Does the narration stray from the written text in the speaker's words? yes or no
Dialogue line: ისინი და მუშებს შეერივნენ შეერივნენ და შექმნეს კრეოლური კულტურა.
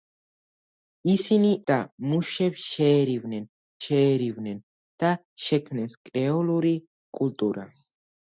no